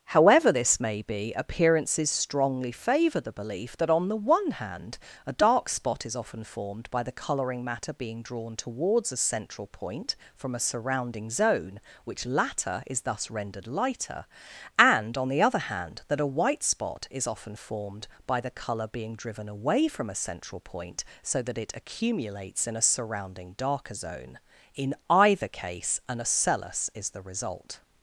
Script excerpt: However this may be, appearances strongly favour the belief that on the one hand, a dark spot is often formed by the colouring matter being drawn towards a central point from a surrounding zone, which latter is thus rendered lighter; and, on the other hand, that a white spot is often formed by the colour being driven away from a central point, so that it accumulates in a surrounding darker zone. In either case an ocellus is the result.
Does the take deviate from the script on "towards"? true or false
false